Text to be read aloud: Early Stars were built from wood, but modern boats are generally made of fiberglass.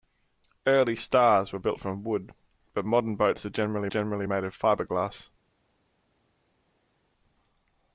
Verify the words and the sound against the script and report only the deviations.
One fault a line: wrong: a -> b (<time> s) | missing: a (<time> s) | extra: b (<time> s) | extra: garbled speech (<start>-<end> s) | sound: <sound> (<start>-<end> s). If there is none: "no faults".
extra: generally (3.9 s)